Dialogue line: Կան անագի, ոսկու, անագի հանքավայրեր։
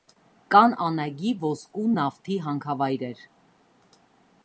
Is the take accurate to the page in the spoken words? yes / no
no